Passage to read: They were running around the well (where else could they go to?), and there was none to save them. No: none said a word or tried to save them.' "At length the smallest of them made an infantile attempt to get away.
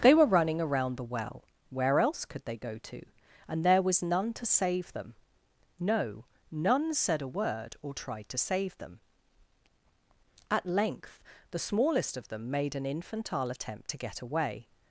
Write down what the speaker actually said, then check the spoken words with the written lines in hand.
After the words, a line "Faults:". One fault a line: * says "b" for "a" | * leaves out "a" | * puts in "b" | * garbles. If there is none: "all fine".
They were running around the well (where else could they go to?), and there was none to save them. No: none said a word or tried to save them.' "At length the smallest of them made an infantile attempt to get away.
Faults:
all fine